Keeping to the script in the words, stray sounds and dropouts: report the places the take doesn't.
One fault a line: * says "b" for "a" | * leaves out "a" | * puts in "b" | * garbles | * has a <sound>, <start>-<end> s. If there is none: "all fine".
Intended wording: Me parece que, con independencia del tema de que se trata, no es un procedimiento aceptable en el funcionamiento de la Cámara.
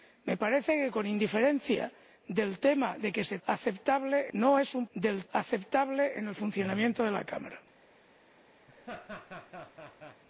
* says "aceptable" for "trata"
* says "del" for "procedimiento"
* has a laugh, 8.7-10.2 s